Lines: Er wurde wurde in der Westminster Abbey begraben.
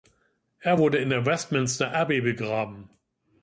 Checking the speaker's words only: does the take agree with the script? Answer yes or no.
no